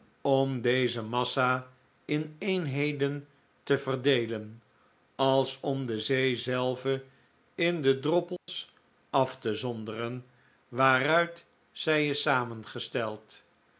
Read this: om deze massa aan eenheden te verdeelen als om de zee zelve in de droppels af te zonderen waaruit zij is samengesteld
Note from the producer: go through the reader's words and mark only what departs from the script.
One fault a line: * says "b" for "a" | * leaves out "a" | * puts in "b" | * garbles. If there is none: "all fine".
* says "in" for "aan"